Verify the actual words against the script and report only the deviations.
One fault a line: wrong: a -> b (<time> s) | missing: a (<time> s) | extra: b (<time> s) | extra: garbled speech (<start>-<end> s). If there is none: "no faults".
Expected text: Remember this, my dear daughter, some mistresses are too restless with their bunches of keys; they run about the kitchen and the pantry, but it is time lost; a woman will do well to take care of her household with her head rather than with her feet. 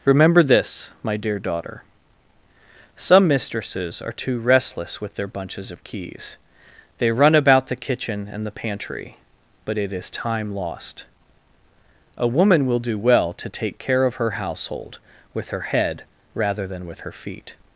no faults